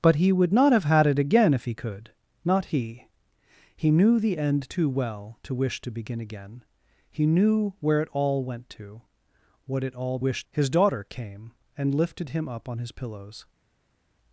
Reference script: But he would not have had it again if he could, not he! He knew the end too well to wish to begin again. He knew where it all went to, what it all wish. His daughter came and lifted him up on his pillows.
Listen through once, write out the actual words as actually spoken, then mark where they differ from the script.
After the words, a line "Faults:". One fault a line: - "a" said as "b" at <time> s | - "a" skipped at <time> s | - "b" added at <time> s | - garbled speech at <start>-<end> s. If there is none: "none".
But he would not have had it again if he could, not he! He knew the end too well to wish to begin again. He knew where it all went to, what it all wish. His daughter came and lifted him up on his pillows.
Faults:
none